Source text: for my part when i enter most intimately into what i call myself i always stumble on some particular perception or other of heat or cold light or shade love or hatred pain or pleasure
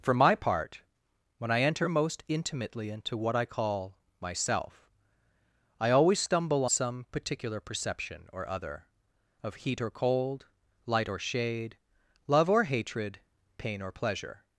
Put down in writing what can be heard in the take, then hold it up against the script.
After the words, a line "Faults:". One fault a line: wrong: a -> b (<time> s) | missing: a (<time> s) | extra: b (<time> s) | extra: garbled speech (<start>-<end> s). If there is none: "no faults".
for my part when i enter most intimately into what i call myself i always stumble some particular perception or other of heat or cold light or shade love or hatred pain or pleasure
Faults:
missing: on (6.7 s)